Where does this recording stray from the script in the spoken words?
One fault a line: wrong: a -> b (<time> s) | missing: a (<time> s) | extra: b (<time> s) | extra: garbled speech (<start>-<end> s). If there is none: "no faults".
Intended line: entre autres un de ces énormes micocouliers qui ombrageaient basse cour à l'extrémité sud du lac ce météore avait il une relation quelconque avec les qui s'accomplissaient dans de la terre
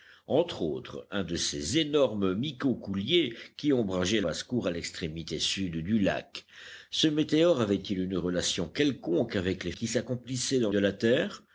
no faults